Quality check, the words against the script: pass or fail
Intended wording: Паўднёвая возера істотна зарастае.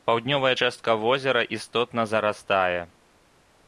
fail